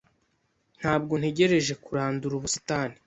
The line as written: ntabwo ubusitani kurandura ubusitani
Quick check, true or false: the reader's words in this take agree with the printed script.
false